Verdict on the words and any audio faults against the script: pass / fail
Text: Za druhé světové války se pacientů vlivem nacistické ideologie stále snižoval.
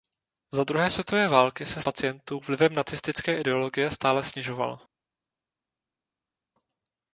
pass